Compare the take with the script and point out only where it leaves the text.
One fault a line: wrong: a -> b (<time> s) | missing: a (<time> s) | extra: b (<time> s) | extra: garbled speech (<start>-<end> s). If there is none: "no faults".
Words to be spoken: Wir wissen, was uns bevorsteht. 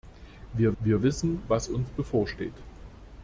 extra: wir (0.8 s)